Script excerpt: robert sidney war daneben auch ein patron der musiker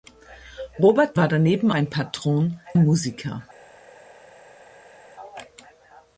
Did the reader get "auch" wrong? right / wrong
wrong